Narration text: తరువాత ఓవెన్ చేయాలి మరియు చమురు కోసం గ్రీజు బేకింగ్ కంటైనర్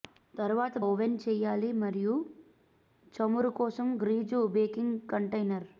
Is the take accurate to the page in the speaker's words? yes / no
yes